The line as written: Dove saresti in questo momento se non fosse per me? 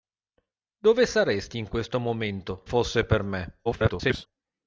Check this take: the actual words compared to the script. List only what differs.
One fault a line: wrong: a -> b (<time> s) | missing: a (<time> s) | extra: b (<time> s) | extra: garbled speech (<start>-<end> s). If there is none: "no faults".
missing: se non (2.6 s)
extra: garbled speech (3.6-4.3 s)